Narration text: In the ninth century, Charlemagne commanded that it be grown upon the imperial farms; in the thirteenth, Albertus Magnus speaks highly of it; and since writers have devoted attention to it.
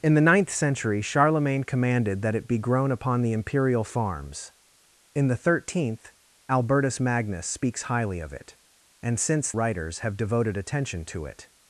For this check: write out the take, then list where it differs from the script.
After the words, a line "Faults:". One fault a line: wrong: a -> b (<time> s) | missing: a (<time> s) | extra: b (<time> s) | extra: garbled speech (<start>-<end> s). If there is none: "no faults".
In the ninth century, Charlemagne commanded that it be grown upon the imperial farms; in the thirteenth, Albertus Magnus speaks highly of it; and since writers have devoted attention to it.
Faults:
no faults